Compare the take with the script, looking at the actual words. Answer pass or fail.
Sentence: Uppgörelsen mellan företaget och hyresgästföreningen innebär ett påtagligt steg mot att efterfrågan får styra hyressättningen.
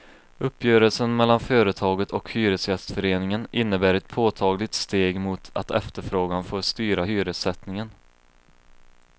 pass